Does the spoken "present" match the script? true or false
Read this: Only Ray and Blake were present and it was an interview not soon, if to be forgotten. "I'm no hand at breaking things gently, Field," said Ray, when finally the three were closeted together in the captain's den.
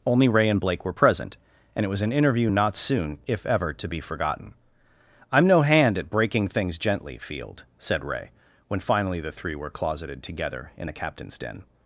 true